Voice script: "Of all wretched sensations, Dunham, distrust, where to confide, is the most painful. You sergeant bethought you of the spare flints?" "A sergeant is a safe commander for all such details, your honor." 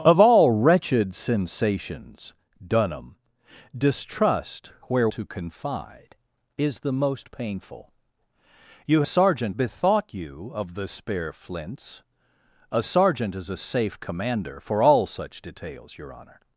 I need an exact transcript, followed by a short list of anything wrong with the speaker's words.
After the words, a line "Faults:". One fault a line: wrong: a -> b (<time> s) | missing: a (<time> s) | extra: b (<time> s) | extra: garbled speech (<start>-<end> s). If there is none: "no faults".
"Of all wretched sensations, Dunham, distrust, where to confide, is the most painful. You sergeant bethought you of the spare flints?" "A sergeant is a safe commander for all such details, your honor."
Faults:
no faults